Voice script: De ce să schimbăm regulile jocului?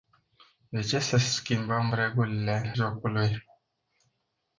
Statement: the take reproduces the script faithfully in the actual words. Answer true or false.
true